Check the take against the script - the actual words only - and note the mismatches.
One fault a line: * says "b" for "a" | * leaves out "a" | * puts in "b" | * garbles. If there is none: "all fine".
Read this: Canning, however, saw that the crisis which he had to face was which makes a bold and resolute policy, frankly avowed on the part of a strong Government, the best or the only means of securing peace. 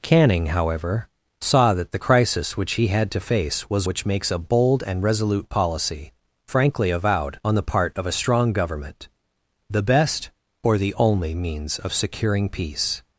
all fine